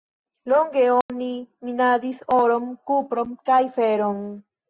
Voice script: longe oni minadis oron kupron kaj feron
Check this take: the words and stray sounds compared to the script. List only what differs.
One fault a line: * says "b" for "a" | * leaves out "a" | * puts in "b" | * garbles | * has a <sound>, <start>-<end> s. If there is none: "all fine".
* has a dropout, 1.0-1.1 s